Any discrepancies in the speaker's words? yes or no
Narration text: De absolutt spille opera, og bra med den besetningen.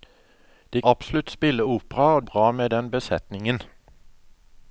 no